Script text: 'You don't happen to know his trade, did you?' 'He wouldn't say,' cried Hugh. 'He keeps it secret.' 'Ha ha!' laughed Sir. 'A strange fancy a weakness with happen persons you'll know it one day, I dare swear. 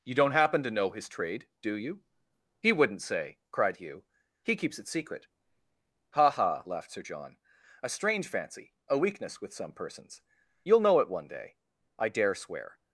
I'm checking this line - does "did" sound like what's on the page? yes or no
no